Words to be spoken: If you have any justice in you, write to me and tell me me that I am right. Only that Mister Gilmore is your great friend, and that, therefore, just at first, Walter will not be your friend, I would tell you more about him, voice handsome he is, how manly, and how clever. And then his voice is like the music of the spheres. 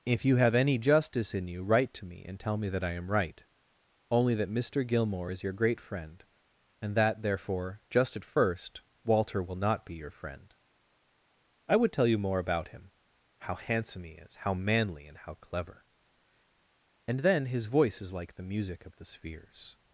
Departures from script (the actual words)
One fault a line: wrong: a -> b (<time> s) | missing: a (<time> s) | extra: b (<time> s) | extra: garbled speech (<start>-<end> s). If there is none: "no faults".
missing: me (2.7 s)
wrong: voice -> how (13.4 s)